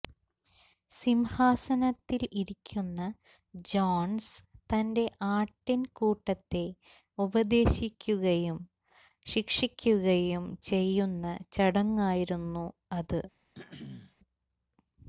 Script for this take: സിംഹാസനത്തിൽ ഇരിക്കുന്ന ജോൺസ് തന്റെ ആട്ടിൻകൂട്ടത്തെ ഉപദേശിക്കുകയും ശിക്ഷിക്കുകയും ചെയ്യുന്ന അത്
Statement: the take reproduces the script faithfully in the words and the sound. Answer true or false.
false